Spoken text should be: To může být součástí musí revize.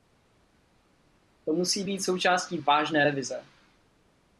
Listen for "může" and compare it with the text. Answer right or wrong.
wrong